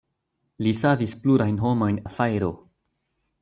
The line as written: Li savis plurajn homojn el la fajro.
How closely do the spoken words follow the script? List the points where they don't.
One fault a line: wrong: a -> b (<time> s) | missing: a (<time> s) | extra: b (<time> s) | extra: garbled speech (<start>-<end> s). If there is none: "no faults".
missing: el (2.0 s)